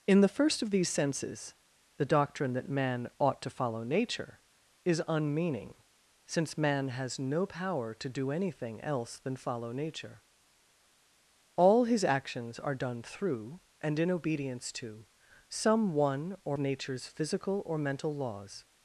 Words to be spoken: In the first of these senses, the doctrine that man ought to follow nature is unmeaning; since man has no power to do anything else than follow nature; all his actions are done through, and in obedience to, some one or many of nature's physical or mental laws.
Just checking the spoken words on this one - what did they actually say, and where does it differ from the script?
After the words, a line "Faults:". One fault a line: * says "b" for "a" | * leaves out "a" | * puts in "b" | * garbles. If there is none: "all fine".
In the first of these senses, the doctrine that man ought to follow nature is unmeaning; since man has no power to do anything else than follow nature; all his actions are done through, and in obedience to, some one or nature's physical or mental laws.
Faults:
* leaves out "many of"